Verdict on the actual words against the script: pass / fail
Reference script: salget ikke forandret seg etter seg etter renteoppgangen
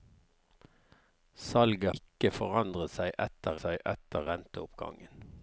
pass